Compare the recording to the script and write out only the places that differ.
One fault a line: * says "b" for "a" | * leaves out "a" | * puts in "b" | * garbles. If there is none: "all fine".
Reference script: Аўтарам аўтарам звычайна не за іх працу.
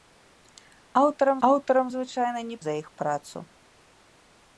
all fine